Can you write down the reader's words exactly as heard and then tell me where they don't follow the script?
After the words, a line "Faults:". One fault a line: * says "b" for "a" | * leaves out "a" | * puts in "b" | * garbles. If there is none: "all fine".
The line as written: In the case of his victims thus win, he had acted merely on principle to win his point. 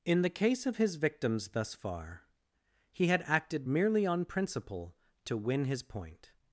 In the case of his victims thus far, he had acted merely on principle to win his point.
Faults:
* says "far" for "win"